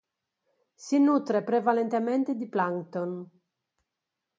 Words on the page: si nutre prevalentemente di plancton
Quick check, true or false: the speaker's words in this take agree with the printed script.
true